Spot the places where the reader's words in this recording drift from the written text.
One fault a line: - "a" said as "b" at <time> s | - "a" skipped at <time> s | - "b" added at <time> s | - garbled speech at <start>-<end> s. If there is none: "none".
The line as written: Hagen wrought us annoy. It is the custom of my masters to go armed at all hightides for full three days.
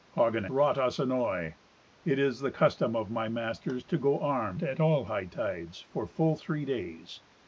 none